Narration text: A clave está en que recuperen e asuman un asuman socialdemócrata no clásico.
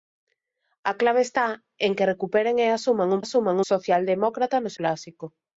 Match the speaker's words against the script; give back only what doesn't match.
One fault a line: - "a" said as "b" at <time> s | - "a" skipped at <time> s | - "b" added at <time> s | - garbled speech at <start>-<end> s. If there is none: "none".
none